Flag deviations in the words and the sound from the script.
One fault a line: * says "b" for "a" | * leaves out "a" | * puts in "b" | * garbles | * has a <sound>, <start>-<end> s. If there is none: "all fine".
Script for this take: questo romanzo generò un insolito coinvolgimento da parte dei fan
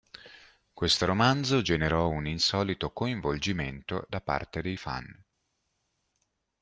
all fine